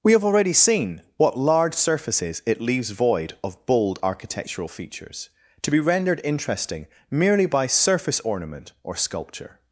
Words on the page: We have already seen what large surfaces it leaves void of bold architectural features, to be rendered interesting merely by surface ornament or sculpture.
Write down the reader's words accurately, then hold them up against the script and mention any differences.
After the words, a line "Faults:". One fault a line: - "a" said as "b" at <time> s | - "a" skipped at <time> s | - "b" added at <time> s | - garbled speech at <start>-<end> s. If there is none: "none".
We have already seen what large surfaces it leaves void of bold architectural features, to be rendered interesting merely by surface ornament or sculpture.
Faults:
none